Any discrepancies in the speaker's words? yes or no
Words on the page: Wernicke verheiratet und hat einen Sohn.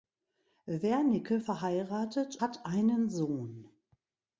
yes